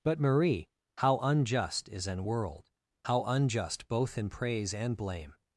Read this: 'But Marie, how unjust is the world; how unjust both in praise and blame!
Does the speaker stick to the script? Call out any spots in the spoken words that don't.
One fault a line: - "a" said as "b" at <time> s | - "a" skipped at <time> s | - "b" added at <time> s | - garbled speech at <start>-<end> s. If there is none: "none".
- "the" said as "an" at 2.1 s